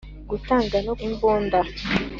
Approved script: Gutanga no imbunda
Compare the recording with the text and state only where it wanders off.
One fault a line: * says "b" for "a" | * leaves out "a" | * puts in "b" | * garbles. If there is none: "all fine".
all fine